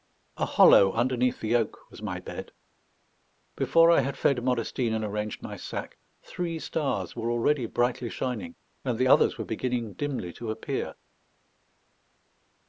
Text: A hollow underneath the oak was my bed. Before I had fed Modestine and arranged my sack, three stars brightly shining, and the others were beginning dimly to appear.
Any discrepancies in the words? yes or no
yes